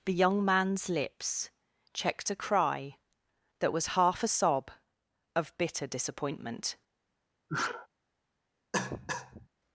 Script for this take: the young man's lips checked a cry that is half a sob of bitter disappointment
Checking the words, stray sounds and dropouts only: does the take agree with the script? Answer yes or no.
no